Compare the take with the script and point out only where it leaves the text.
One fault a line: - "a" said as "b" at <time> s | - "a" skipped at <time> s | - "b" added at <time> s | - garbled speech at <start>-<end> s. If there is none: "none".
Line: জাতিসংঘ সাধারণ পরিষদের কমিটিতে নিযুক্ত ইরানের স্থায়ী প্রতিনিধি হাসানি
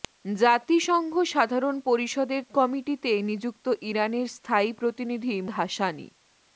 none